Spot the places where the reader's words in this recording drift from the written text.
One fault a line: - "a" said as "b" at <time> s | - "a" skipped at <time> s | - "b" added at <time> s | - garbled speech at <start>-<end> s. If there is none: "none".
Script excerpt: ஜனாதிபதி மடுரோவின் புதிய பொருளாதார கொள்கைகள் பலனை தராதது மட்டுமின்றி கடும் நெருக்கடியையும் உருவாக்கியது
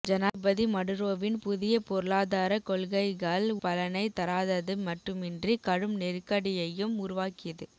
none